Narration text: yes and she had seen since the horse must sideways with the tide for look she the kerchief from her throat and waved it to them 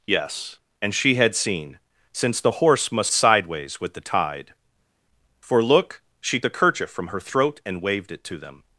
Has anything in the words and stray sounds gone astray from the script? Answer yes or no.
no